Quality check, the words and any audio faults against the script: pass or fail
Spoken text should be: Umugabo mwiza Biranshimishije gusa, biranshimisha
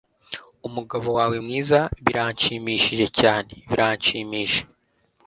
fail